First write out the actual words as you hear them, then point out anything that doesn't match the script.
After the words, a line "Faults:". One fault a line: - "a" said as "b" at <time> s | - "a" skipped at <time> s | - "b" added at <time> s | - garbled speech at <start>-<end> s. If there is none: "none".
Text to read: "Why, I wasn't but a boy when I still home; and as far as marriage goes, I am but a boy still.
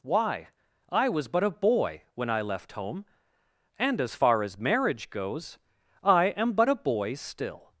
"Why, I was but a boy when I left home; and as far as marriage goes, I am but a boy still.
Faults:
- "wasn't" said as "was" at 1.1 s
- "still" said as "left" at 2.4 s